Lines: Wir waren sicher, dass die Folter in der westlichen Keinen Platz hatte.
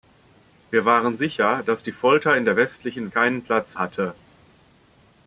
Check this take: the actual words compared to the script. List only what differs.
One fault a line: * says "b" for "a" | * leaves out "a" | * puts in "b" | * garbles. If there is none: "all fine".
all fine